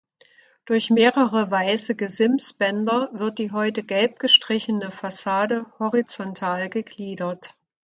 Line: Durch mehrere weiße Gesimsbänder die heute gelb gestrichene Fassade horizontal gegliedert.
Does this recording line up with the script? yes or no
no